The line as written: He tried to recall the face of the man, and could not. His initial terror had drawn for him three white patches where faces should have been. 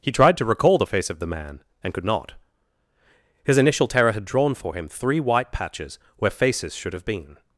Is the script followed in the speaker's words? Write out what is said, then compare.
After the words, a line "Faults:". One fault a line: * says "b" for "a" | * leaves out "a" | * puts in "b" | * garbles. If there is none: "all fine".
He tried to recall the face of the man, and could not. His initial terror had drawn for him three white patches where faces should have been.
Faults:
all fine